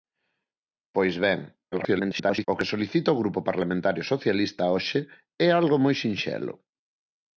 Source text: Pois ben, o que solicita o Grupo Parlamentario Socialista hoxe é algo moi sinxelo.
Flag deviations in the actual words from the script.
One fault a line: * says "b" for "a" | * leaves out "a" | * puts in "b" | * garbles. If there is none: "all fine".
* garbles